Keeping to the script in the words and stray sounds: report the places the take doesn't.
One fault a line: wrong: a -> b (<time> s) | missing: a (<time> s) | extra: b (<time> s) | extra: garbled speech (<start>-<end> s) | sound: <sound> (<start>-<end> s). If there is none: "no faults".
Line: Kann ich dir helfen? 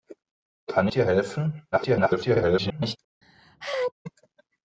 missing: ich (0.9 s)
extra: garbled speech (1.7-3.0 s)
sound: sneeze (3.2-3.9 s)